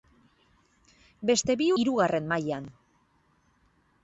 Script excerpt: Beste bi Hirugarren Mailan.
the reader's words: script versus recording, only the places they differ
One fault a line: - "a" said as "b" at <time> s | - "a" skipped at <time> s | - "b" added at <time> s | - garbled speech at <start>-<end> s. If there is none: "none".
none